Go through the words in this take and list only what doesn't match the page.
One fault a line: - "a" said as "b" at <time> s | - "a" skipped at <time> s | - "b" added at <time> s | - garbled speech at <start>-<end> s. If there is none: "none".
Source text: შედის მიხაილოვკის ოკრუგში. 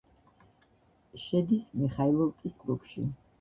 none